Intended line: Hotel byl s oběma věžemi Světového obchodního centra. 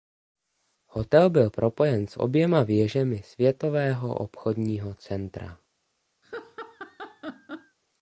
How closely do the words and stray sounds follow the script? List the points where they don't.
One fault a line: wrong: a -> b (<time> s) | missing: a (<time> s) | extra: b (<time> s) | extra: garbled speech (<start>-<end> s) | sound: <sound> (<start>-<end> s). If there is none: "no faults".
extra: propojen (1.5 s)
sound: laugh (6.2-7.8 s)